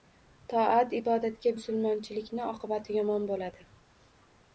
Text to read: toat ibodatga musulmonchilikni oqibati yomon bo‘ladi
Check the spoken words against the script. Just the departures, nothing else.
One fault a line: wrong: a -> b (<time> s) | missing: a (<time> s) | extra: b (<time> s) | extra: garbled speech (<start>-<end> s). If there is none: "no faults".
no faults